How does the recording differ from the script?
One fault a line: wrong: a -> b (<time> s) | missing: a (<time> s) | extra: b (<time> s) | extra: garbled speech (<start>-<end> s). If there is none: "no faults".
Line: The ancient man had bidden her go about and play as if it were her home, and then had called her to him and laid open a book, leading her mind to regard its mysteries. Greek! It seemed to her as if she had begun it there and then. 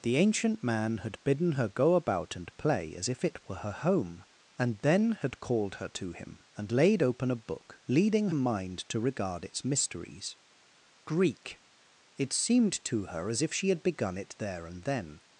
missing: her (8.3 s)